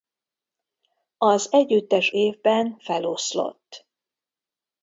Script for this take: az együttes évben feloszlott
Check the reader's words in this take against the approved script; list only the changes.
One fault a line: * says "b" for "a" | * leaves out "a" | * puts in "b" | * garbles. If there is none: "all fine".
all fine